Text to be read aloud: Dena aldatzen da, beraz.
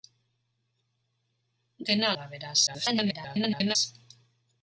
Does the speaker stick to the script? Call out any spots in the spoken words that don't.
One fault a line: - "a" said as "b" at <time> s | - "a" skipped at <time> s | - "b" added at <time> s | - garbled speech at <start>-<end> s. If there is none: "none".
- "aldatzen" skipped at 2.1 s
- garbled speech at 2.7-3.8 s